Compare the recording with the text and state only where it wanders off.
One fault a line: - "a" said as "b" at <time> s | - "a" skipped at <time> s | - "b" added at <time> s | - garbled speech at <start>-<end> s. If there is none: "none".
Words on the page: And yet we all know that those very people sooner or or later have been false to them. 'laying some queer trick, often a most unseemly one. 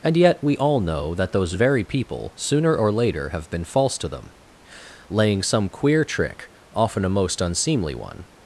- "or" skipped at 2.9 s